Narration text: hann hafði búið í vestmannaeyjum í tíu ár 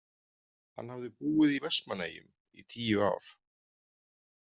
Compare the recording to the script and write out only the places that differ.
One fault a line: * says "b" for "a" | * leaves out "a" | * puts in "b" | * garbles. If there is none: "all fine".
all fine